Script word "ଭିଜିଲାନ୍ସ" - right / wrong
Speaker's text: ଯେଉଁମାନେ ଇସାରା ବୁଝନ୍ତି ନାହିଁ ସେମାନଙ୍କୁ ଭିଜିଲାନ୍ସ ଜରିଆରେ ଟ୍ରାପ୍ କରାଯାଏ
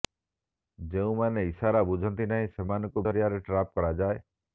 wrong